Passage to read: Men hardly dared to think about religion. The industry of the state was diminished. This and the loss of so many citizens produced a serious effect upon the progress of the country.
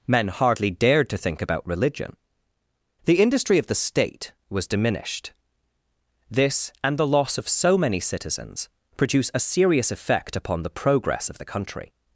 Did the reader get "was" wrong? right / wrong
right